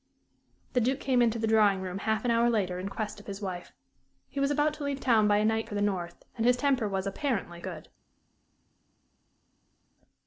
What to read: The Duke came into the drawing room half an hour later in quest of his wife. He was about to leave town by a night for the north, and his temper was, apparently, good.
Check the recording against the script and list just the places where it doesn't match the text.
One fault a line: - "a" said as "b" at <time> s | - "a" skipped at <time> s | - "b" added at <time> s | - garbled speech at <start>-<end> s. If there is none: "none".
none